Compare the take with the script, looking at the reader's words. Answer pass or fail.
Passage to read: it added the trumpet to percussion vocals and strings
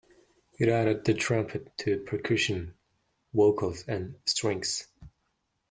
pass